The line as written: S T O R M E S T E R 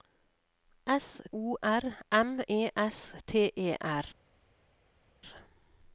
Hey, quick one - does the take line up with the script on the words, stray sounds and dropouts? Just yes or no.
no